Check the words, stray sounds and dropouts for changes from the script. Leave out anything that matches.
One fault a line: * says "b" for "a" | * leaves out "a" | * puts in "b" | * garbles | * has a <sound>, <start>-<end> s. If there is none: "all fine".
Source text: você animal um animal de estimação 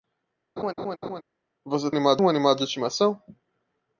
* has a laugh, 0.6-1.2 s